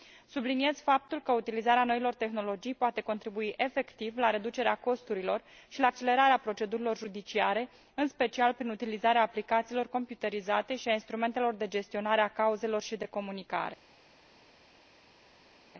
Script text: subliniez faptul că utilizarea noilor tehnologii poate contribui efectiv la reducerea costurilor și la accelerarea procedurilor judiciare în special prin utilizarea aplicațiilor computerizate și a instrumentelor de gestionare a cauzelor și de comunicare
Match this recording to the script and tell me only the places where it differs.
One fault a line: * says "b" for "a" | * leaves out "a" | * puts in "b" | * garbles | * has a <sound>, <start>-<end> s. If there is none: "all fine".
all fine